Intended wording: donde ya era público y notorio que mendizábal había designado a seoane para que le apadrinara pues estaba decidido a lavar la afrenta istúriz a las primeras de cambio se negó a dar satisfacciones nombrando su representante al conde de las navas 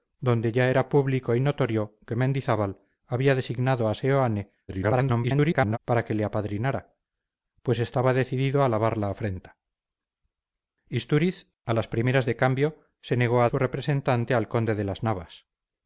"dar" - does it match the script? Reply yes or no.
no